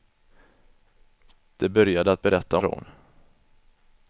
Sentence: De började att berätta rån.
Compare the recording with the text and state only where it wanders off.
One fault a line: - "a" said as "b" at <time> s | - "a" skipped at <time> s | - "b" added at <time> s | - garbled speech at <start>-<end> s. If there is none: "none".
none